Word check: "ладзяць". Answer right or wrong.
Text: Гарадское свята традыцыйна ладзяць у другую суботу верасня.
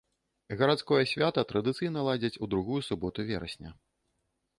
right